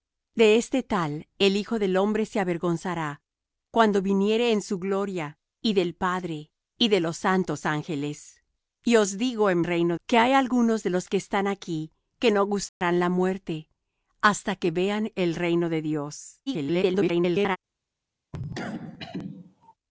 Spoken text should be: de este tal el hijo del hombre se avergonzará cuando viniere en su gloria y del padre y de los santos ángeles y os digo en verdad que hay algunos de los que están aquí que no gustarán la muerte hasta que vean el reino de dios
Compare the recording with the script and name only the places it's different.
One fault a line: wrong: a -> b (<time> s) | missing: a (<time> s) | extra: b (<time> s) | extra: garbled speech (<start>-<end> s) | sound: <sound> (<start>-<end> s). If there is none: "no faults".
wrong: verdad -> reino (9.6 s)
sound: dropout (12.7-12.8 s)
extra: garbled speech (16.5-17.6 s)
sound: cough (18.3-19.7 s)